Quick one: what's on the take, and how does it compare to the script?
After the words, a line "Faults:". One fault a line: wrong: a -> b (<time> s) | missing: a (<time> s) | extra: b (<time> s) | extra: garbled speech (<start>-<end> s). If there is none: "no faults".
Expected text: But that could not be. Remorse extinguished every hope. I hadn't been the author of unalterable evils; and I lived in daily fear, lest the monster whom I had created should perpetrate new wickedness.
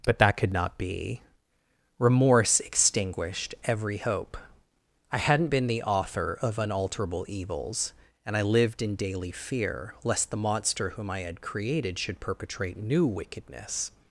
But that could not be. Remorse extinguished every hope. I hadn't been the author of unalterable evils; and I lived in daily fear, lest the monster whom I had created should perpetrate new wickedness.
Faults:
no faults